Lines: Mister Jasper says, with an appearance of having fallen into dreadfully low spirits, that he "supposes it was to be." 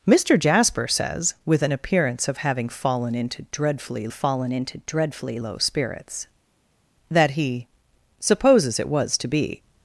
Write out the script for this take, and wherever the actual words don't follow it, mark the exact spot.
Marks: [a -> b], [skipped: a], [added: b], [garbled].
Mister Jasper says, with an appearance of having fallen into dreadfully [added: fallen into dreadfully] low spirits, that he "supposes it was to be."